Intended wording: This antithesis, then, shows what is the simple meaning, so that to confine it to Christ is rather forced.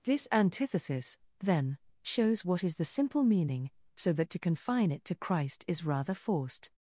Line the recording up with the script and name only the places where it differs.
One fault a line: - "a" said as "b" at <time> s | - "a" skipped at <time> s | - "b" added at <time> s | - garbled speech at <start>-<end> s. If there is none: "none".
none